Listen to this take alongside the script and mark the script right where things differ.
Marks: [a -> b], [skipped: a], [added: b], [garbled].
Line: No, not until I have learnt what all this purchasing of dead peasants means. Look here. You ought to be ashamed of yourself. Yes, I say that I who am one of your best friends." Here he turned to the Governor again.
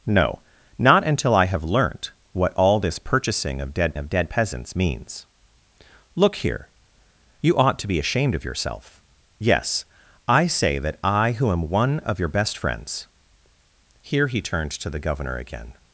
No, not until I have learnt what all this purchasing of dead [added: of dead] peasants means. Look here. You ought to be ashamed of yourself. Yes, I say that I who am one of your best friends." Here he turned to the Governor again.